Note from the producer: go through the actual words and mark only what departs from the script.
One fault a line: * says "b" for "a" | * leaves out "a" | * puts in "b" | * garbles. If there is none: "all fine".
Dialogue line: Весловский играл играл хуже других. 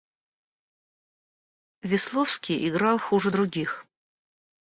* leaves out "играл"